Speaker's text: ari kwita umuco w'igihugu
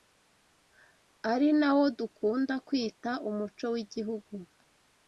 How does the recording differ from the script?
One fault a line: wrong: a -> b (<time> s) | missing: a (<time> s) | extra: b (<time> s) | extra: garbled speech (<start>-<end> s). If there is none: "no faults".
extra: nawo dukunda (1.6 s)